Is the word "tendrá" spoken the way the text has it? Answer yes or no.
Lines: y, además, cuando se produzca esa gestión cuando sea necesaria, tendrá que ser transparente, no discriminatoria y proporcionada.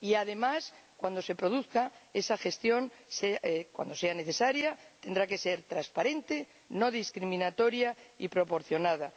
yes